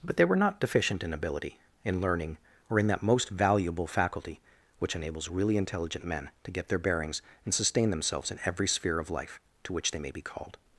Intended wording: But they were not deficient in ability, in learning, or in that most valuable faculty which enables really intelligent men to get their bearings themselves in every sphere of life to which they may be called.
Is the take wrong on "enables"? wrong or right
right